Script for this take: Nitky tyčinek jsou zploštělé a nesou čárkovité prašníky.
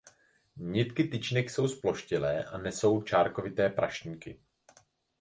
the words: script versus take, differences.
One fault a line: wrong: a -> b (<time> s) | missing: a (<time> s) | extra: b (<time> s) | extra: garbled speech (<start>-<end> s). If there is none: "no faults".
no faults